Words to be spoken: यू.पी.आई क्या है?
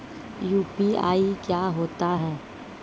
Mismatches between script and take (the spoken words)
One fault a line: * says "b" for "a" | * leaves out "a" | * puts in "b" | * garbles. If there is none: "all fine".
* puts in "होता"